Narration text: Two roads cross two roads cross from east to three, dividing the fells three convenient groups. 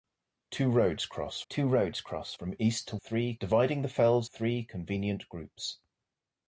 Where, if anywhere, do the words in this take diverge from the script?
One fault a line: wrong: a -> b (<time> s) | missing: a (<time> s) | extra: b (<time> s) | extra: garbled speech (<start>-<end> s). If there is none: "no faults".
no faults